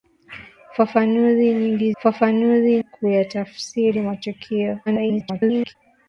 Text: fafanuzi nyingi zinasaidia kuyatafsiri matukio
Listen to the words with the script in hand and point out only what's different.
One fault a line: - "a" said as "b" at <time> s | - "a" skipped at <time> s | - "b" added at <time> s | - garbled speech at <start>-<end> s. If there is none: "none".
- "zinasaidia" said as "fafanuzi" at 2.0 s
- garbled speech at 4.9-5.8 s